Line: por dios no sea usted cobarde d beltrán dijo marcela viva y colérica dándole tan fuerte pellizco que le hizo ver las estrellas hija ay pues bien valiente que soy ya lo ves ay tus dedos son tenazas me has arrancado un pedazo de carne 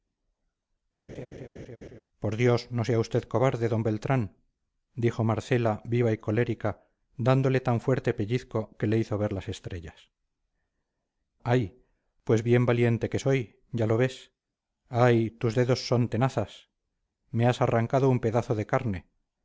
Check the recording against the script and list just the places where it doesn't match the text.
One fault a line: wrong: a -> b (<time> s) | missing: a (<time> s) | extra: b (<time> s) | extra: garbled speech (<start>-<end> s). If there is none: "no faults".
missing: hija (10.1 s)